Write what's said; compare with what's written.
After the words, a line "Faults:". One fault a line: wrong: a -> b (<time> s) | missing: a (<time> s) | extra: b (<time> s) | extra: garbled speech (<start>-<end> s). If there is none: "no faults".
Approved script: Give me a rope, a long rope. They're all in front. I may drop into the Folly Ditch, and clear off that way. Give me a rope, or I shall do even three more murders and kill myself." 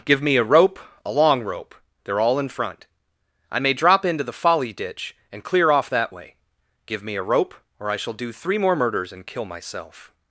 Give me a rope, a long rope. They're all in front. I may drop into the Folly Ditch, and clear off that way. Give me a rope, or I shall do three more murders and kill myself."
Faults:
missing: even (8.3 s)